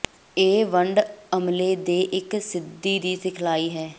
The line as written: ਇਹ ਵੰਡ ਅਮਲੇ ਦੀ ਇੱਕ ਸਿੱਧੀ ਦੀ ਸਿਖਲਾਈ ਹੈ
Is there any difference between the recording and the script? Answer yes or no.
yes